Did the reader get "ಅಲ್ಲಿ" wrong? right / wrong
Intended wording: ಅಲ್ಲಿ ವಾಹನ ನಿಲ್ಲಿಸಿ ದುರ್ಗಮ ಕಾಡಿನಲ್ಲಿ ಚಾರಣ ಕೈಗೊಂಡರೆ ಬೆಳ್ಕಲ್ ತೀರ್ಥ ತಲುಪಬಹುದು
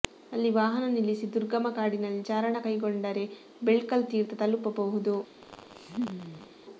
right